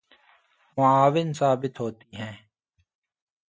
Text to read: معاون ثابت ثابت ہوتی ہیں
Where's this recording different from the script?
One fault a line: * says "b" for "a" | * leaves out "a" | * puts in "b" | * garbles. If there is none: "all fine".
* leaves out "ثابت"